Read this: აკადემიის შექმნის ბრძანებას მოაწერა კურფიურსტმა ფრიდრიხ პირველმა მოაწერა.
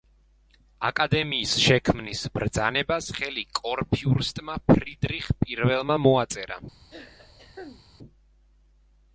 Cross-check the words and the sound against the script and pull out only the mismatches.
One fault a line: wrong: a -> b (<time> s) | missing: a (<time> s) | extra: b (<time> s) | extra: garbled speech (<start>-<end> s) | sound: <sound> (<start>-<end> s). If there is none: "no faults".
wrong: მოაწერა -> ხელი (3.2 s)
sound: throat clearing (6.9-7.9 s)